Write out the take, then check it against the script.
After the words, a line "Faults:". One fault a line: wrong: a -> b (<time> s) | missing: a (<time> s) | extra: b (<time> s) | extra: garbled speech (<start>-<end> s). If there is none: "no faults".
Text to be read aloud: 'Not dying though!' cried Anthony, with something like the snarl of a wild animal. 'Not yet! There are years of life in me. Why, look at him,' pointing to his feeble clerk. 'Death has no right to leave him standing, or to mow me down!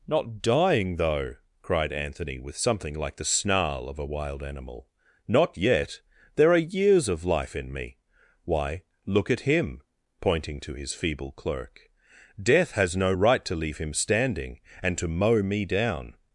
'Not dying though!' cried Anthony, with something like the snarl of a wild animal. 'Not yet! There are years of life in me. Why, look at him,' pointing to his feeble clerk. 'Death has no right to leave him standing, and to mow me down!
Faults:
wrong: or -> and (14.8 s)